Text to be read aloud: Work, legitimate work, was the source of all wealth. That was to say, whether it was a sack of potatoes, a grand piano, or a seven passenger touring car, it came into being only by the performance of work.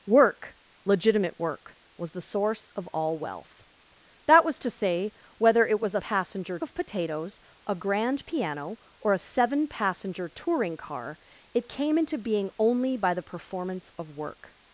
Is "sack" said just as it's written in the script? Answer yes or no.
no